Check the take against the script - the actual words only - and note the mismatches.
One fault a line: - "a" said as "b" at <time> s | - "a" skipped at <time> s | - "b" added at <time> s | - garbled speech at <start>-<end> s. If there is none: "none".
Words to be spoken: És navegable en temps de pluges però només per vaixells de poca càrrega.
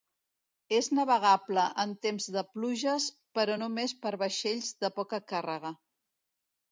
none